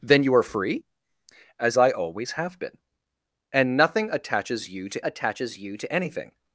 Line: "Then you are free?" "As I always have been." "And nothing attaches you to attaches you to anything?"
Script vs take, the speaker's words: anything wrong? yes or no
no